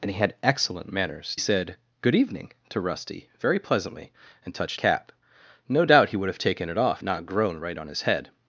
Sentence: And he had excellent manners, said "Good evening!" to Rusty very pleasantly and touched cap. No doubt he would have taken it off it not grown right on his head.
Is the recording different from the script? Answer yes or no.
no